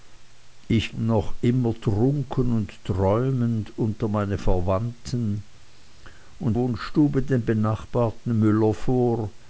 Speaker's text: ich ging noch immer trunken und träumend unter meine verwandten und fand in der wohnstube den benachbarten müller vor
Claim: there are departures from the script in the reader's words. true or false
true